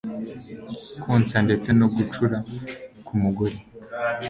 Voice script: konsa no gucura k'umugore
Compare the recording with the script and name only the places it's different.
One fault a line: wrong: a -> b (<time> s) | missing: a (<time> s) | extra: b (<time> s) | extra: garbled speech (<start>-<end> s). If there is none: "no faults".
extra: ndetse (1.4 s)